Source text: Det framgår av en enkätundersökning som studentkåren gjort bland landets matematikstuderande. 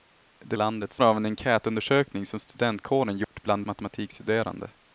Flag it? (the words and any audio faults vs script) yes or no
yes